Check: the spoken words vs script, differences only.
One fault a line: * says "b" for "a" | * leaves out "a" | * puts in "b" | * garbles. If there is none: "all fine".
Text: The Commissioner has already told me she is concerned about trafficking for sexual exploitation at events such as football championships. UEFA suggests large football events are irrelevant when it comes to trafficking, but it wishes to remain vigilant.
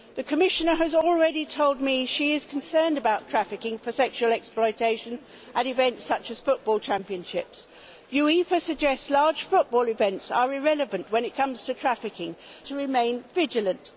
* leaves out "but it wishes"